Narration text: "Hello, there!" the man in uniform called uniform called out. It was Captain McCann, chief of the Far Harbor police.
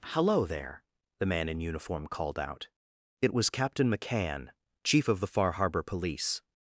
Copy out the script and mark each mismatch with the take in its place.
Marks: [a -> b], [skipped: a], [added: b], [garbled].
"Hello, there!" the man in uniform called [skipped: uniform called] out. It was Captain McCann, chief of the Far Harbor police.